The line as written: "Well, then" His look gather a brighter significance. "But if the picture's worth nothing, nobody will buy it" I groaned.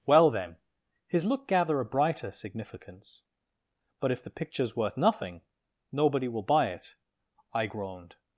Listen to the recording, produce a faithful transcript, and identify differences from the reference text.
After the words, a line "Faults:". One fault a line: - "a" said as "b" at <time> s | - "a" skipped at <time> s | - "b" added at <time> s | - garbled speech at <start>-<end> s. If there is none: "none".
"Well, then" His look gather a brighter significance. "But if the picture's worth nothing, nobody will buy it" I groaned.
Faults:
none